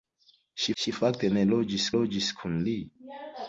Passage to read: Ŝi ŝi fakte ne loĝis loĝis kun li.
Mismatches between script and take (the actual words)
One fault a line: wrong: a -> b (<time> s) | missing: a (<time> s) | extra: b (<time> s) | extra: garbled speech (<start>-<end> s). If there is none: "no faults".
no faults